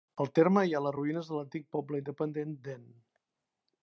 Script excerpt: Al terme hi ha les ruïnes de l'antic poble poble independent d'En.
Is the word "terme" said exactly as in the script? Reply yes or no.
yes